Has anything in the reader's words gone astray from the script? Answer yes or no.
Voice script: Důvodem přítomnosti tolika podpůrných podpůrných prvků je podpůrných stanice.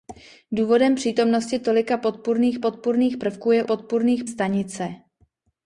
no